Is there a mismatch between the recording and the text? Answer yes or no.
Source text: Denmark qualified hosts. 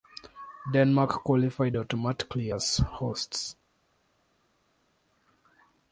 yes